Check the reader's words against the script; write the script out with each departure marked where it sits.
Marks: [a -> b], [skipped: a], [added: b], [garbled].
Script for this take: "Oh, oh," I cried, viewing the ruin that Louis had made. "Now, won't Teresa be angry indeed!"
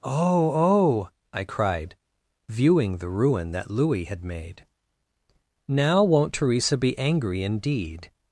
"Oh, oh," I cried, viewing the ruin that Louis had made. "Now, won't Teresa be angry indeed!"